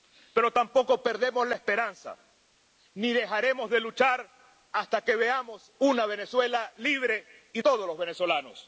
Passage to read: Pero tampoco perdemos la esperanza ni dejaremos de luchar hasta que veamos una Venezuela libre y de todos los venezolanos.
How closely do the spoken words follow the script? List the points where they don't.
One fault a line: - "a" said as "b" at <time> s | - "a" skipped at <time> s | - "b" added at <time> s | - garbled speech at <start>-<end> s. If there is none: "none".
- "de" skipped at 7.6 s